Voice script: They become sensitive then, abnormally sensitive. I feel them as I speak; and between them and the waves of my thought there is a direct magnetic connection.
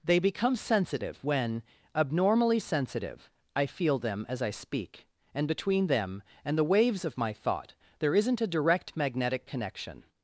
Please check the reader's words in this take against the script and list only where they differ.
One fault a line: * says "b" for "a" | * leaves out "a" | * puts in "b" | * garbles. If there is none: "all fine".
* says "when" for "then"
* says "isn't" for "is"